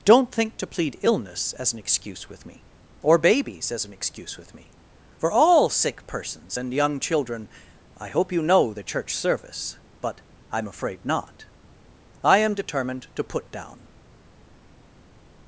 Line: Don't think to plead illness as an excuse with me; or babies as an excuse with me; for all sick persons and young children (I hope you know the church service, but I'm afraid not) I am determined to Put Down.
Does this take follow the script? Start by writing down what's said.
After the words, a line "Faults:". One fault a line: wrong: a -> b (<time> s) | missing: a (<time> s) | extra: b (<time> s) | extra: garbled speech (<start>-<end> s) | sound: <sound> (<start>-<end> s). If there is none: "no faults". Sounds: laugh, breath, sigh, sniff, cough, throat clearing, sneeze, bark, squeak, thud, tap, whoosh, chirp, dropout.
Don't think to plead illness as an excuse with me; or babies as an excuse with me; for all sick persons and young children (I hope you know the church service, but I'm afraid not) I am determined to Put Down.
Faults:
no faults